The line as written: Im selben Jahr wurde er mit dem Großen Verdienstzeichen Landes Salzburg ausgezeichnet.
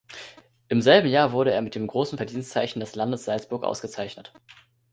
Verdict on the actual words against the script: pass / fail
fail